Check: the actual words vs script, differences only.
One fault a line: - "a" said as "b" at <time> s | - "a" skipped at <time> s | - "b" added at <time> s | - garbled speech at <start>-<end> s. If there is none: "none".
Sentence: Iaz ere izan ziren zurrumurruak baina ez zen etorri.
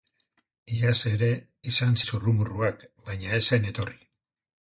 - "ziren" skipped at 2.0 s